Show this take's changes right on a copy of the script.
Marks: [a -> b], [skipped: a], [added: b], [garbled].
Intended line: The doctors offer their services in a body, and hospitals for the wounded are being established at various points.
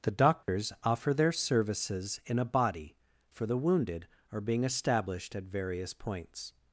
The doctors offer their services in a body, [skipped: and hospitals] for the wounded are being established at various points.